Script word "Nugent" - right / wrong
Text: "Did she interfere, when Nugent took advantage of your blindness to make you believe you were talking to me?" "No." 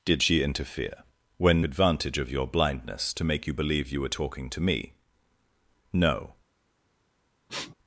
wrong